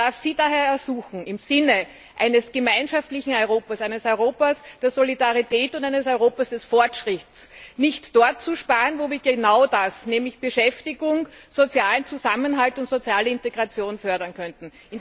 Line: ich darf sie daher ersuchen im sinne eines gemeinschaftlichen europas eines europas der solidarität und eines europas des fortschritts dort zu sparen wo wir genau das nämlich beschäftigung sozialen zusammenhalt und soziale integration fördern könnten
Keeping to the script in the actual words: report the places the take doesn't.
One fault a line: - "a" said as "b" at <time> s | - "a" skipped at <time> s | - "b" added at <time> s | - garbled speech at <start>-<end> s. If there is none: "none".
- "nicht" added at 7.7 s